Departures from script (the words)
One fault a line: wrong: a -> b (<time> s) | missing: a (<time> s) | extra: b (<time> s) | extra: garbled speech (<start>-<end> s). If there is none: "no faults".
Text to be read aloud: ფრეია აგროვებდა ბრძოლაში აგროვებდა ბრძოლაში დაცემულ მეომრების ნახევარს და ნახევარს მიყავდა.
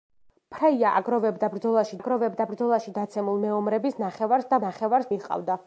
no faults